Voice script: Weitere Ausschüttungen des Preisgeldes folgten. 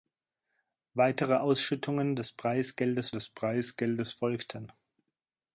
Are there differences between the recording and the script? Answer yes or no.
yes